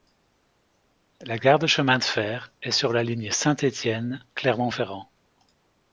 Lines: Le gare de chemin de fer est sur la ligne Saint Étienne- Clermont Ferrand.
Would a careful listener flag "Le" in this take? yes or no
yes